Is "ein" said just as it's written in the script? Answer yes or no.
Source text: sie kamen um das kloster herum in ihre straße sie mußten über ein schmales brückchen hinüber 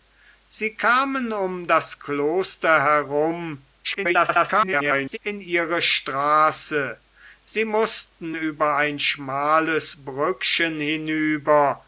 yes